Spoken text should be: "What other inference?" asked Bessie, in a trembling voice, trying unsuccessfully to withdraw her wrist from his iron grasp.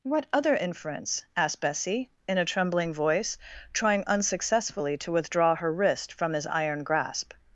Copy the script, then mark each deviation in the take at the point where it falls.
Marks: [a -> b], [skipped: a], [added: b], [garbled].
"What other inference?" asked Bessie, in a trembling voice, trying unsuccessfully to withdraw her wrist from his iron grasp.